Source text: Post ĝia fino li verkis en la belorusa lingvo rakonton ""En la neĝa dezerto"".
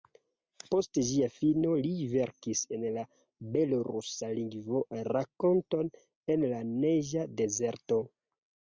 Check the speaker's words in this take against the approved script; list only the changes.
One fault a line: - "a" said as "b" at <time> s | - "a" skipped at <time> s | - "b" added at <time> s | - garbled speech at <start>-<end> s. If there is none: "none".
none